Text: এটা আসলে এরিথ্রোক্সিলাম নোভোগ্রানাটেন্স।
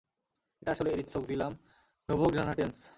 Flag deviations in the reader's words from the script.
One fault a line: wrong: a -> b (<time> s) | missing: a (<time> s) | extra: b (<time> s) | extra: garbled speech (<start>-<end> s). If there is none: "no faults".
no faults